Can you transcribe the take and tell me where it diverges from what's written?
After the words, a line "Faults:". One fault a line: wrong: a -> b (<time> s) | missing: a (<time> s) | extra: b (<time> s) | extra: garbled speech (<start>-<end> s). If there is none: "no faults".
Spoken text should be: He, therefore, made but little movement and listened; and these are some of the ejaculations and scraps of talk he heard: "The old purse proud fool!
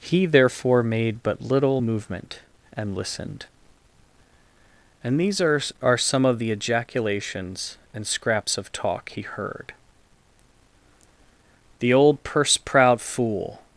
He, therefore, made but little movement and listened; and these are are some of the ejaculations and scraps of talk he heard: "The old purse proud fool!
Faults:
extra: are (5.8 s)